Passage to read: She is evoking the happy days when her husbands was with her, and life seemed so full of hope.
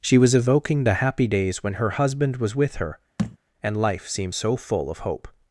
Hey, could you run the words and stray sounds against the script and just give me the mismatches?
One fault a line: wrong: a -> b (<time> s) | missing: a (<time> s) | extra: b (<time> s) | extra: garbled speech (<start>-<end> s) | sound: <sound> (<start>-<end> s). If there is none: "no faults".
wrong: is -> was (0.2 s)
wrong: husbands -> husband (1.9 s)
sound: thud (3.2-3.4 s)